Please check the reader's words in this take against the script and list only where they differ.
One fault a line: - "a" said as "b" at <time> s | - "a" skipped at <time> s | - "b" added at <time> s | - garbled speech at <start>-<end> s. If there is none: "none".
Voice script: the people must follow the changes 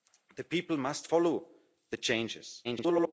- garbled speech at 2.6-3.1 s